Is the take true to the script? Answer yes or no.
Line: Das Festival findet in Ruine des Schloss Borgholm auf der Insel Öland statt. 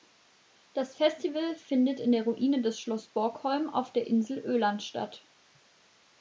no